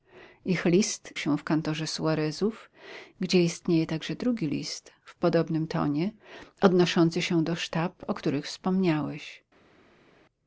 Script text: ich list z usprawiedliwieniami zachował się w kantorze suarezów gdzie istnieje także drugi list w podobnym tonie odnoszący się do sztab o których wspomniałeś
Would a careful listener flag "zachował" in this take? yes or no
yes